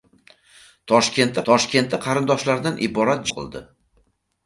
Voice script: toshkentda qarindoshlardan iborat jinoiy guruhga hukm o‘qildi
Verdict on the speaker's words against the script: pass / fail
fail